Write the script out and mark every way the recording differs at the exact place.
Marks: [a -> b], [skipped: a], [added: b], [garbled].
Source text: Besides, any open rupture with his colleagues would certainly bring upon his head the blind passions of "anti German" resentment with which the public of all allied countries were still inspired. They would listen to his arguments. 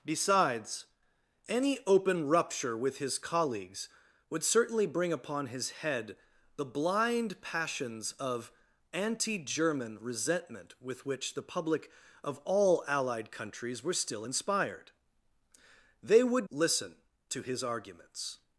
Besides, any open rupture with his colleagues would certainly bring upon his head the blind passions of "anti German" resentment with which the public of all allied countries were still inspired. They would listen to his arguments.